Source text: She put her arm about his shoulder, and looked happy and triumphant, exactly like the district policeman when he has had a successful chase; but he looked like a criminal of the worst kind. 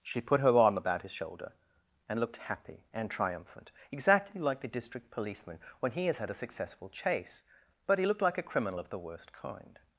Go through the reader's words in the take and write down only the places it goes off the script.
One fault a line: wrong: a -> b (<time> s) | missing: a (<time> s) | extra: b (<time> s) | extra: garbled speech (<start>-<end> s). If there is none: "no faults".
no faults